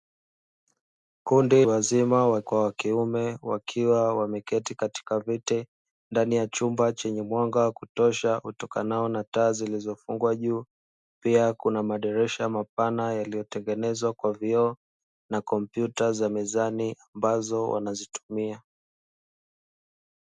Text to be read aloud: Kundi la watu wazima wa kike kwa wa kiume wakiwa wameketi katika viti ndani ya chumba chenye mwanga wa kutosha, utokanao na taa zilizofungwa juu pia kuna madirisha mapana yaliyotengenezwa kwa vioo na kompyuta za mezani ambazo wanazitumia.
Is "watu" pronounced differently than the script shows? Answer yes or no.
yes